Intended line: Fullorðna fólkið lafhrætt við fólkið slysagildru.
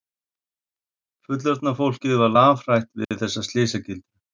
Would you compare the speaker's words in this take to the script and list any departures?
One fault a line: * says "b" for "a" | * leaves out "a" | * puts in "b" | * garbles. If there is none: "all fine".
* puts in "var"
* says "þessa" for "fólkið"